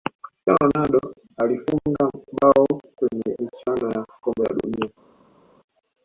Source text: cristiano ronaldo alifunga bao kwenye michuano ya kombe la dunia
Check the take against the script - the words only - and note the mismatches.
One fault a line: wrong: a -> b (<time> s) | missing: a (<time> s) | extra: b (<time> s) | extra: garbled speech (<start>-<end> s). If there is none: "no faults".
no faults